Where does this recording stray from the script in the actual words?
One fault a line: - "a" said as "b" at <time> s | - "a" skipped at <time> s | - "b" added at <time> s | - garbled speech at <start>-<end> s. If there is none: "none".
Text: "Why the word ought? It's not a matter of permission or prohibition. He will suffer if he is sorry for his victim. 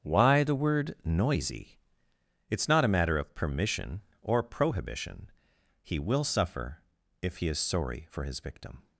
- "ought" said as "noisy" at 1.1 s